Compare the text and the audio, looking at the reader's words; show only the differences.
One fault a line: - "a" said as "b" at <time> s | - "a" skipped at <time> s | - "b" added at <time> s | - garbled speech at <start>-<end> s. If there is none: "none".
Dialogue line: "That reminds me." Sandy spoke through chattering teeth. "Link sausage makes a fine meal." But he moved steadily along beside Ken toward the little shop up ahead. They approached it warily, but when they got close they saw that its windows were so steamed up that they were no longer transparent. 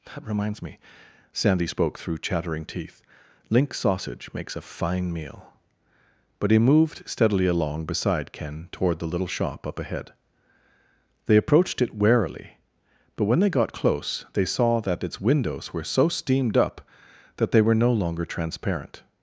none